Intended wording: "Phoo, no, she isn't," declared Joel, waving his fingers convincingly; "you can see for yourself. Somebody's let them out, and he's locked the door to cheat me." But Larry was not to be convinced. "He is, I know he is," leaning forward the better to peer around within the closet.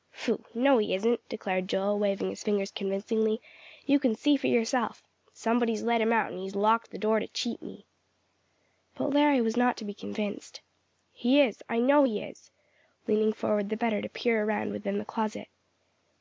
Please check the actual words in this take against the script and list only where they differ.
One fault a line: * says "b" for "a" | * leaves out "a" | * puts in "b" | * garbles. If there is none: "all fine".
* says "he" for "she"
* says "him" for "them"